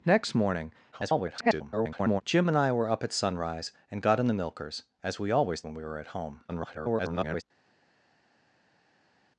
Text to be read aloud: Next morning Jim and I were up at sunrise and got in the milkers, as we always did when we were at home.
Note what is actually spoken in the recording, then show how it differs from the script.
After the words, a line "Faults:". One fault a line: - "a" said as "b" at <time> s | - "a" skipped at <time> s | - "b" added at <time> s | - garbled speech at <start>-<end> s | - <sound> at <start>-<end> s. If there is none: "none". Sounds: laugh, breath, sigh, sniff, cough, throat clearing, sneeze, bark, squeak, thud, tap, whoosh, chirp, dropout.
Next morning [garbled] Jim and I were up at sunrise and got in the milkers, as we always when we were at home. [garbled]
Faults:
- garbled speech at 0.9-2.2 s
- "did" skipped at 5.6 s
- garbled speech at 6.5-7.4 s